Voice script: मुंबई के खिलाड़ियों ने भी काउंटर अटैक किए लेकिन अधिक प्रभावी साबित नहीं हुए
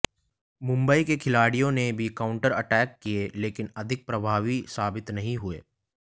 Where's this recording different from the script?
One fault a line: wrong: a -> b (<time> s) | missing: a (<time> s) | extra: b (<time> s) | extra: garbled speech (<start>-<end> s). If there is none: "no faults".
no faults